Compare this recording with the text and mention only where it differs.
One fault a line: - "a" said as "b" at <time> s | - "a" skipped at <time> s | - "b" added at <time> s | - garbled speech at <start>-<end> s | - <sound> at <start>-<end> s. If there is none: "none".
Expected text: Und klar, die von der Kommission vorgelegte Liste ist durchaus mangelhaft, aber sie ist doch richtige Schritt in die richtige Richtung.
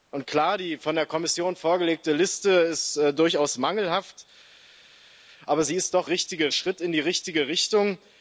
none